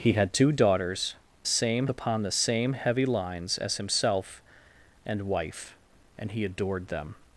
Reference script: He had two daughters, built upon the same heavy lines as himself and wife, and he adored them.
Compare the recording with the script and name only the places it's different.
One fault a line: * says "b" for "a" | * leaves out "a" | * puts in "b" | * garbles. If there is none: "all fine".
* says "same" for "built"